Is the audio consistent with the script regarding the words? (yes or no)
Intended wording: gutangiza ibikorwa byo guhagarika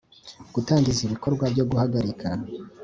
yes